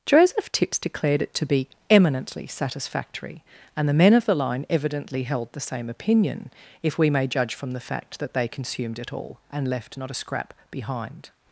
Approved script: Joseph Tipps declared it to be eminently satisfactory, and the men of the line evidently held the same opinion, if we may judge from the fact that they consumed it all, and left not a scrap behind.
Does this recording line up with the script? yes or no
yes